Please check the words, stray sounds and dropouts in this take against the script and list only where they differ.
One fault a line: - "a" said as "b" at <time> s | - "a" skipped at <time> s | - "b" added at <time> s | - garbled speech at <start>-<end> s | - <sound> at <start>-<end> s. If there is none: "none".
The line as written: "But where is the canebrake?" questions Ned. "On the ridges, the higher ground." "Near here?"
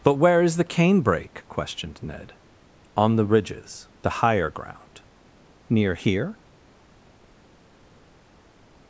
- "questions" said as "questioned" at 1.5 s